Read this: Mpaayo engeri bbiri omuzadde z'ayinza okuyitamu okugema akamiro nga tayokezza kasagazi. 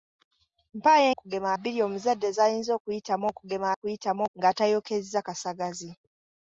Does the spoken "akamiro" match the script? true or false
false